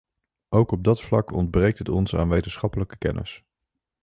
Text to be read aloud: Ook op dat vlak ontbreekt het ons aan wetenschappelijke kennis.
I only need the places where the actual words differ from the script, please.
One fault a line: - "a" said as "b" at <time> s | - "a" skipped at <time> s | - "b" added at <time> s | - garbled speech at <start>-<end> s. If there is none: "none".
none